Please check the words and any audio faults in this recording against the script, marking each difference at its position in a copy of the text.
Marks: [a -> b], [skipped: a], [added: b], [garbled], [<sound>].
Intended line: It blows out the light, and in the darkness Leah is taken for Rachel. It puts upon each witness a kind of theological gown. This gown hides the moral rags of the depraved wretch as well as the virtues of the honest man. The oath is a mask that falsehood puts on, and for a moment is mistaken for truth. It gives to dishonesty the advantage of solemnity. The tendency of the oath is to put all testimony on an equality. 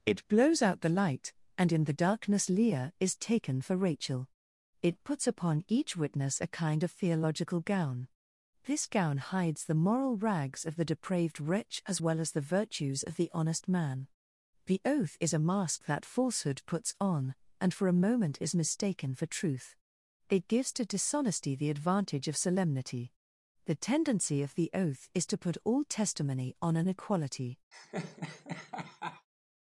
It blows out the light, and in the darkness Leah is taken for Rachel. It puts upon each witness a kind of theological gown. This gown hides the moral rags of the depraved wretch as well as the virtues of the honest man. The oath is a mask that falsehood puts on, and for a moment is mistaken for truth. It gives to dishonesty the advantage of solemnity. The tendency of the oath is to put all testimony on an equality. [laugh]